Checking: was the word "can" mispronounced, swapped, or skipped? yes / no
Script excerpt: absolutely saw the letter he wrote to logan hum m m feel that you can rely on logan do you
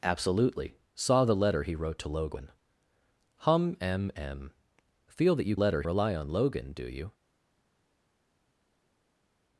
yes